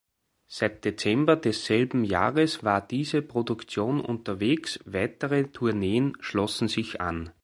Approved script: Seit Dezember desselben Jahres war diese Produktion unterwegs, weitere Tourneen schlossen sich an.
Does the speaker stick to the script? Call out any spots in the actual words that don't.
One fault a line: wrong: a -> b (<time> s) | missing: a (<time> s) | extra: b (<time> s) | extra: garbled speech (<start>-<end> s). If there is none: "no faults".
no faults